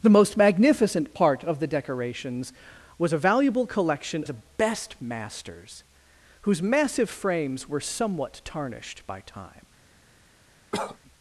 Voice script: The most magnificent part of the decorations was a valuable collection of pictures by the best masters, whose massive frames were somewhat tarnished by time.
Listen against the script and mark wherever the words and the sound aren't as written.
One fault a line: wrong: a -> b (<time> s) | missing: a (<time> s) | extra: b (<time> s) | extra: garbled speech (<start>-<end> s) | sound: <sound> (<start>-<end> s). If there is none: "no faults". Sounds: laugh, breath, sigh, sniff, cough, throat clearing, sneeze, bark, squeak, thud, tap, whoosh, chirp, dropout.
missing: of pictures by (4.2 s)
sound: cough (10.7-11.0 s)